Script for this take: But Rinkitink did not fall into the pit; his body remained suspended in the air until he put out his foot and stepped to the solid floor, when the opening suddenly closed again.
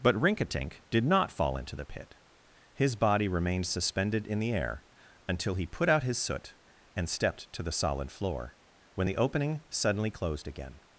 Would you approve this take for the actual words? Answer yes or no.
no